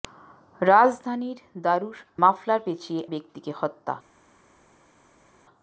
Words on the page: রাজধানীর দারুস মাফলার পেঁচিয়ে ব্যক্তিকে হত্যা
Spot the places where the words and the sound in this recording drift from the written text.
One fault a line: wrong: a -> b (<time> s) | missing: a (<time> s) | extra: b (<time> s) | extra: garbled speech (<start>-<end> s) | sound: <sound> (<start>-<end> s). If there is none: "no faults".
no faults